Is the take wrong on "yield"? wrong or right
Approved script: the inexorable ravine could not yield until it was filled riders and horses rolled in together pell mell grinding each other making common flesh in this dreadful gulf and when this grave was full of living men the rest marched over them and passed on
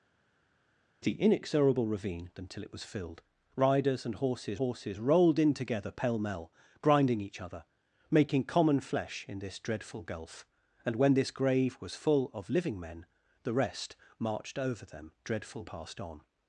wrong